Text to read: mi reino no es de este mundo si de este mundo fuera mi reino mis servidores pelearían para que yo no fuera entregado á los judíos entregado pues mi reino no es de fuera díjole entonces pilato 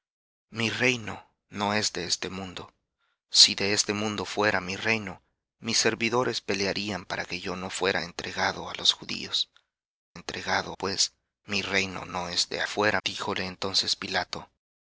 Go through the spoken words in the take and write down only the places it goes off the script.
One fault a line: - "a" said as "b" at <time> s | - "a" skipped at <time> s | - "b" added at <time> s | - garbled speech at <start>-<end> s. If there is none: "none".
none